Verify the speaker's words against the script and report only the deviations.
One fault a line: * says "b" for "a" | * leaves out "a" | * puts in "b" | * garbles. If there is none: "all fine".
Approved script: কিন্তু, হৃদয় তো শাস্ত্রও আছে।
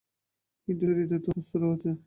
all fine